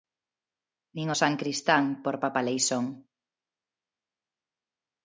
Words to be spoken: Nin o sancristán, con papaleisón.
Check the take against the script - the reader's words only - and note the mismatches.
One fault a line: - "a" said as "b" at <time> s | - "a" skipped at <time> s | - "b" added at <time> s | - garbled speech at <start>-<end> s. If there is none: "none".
- "con" said as "por" at 2.0 s